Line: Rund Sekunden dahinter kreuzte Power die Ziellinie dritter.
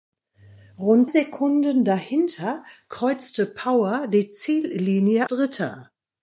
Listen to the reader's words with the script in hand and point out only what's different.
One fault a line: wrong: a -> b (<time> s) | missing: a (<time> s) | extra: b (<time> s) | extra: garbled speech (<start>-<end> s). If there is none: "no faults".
no faults